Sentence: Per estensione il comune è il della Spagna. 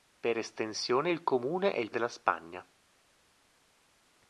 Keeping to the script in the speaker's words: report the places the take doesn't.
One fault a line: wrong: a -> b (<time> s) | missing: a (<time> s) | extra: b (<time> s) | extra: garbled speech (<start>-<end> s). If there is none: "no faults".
no faults